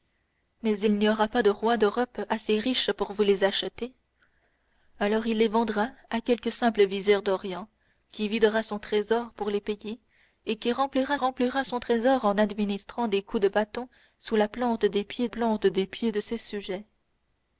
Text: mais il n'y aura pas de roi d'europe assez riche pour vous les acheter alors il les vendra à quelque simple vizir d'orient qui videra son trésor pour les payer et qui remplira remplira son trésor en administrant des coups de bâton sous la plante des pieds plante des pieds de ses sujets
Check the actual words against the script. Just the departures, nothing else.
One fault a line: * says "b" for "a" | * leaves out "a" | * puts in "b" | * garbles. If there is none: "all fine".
all fine